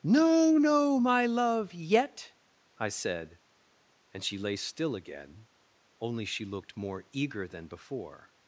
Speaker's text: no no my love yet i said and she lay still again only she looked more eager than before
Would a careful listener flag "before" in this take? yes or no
no